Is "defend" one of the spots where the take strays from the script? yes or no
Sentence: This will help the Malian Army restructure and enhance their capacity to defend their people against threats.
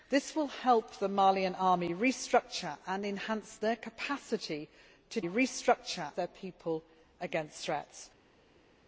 yes